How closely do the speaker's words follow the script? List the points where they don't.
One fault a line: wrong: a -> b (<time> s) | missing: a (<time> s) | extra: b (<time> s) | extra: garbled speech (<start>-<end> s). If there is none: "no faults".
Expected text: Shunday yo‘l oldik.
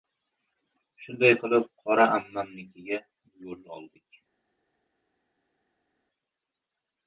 extra: qilib Qora ammam»nikiga (1.4 s)